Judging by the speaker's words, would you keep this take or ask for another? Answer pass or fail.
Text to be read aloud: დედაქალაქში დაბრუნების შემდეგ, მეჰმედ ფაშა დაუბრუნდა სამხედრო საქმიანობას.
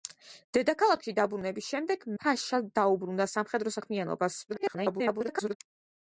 fail